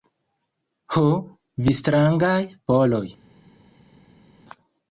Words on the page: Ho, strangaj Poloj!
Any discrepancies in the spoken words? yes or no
yes